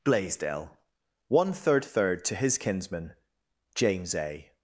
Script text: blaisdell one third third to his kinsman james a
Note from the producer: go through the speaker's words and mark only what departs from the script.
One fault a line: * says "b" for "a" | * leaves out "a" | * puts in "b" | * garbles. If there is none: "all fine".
all fine